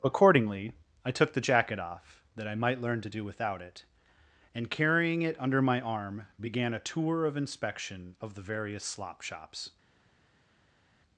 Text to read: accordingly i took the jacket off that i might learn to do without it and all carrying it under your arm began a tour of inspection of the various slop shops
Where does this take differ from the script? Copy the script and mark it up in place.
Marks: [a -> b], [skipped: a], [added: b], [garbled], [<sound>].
accordingly i took the jacket off that i might learn to do without it and [skipped: all] carrying it under [your -> my] arm began a tour of inspection of the various slop shops